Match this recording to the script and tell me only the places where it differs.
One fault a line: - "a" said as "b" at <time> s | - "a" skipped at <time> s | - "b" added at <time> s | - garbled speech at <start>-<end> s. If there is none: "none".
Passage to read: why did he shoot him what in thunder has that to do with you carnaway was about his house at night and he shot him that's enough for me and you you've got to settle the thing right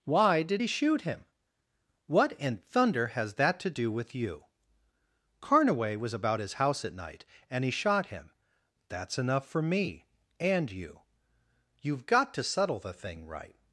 none